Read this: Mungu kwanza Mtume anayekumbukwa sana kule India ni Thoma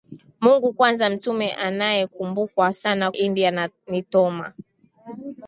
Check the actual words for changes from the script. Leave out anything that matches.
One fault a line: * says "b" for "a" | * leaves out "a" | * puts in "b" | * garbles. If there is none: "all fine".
* leaves out "kule"